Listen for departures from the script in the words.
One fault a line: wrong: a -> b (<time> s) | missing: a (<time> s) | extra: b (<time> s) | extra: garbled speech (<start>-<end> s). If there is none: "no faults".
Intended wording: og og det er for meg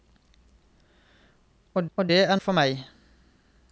no faults